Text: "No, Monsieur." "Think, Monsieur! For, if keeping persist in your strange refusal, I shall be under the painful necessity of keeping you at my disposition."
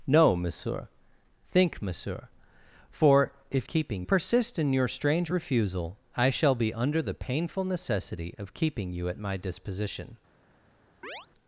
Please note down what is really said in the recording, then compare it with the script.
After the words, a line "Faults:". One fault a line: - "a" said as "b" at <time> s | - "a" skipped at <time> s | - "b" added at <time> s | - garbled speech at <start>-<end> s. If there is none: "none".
"No, Monsieur." "Think, Monsieur! For, if keeping persist in your strange refusal, I shall be under the painful necessity of keeping you at my disposition."
Faults:
none